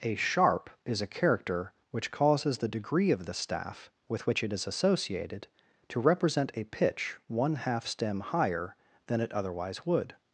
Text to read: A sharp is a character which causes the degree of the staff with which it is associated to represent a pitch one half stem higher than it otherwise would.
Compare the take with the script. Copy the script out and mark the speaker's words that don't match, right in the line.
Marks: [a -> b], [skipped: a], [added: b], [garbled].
A sharp is a character which causes the degree of the staff with which it is associated to represent a pitch one half stem higher than it otherwise would.